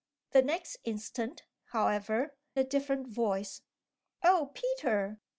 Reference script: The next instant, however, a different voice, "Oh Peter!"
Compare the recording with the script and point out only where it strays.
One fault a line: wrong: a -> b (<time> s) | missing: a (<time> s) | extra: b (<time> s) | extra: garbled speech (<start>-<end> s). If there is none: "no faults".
no faults